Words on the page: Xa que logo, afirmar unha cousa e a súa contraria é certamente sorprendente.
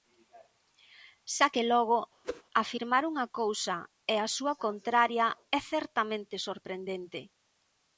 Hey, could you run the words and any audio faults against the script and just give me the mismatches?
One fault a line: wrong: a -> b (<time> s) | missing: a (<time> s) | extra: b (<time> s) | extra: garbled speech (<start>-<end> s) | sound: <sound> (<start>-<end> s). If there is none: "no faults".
sound: whoosh (2.2-2.4 s)